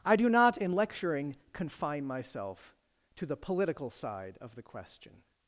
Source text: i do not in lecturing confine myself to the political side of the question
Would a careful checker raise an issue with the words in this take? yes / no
no